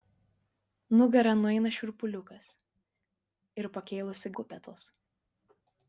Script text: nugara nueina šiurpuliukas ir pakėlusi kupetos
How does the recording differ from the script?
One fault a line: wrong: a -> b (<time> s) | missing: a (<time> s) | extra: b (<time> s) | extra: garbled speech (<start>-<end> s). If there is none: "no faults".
no faults